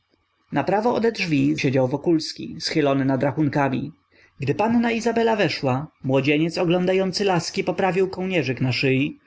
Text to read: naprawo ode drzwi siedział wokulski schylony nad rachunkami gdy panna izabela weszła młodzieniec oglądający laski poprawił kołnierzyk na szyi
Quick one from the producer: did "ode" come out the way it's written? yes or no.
yes